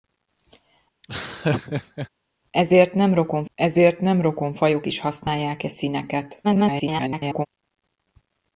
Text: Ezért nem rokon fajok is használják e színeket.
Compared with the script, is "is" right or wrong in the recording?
right